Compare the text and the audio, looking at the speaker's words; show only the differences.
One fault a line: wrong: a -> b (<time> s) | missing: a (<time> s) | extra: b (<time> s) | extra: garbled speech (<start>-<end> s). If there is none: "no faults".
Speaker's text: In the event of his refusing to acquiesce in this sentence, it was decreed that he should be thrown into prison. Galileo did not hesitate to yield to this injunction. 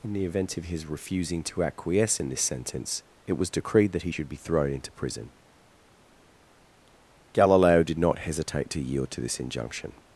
no faults